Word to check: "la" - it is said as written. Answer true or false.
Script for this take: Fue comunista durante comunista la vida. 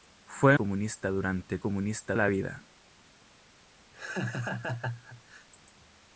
true